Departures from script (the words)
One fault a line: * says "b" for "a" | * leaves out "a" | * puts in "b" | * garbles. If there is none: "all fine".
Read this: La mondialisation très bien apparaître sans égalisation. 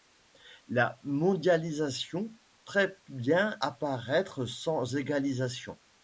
all fine